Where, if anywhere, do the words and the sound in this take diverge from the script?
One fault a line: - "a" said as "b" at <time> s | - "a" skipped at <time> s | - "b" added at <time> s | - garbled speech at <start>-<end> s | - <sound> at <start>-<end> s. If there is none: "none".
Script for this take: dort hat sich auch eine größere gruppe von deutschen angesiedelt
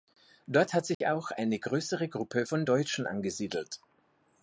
- dropout at 0.9-1.0 s